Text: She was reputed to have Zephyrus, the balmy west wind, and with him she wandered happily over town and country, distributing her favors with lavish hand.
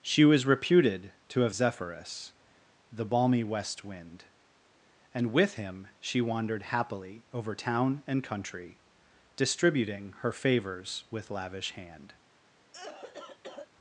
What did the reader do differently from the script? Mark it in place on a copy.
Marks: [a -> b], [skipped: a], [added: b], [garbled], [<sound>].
She was reputed to have Zephyrus, the balmy west wind, and with him she wandered happily over town and country, distributing her favors with lavish hand. [cough]